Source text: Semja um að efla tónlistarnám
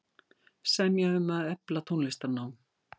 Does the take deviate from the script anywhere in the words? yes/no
no